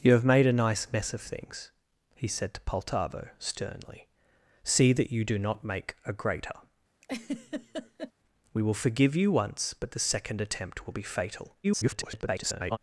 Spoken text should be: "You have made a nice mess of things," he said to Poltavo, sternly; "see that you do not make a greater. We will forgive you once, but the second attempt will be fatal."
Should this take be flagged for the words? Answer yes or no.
yes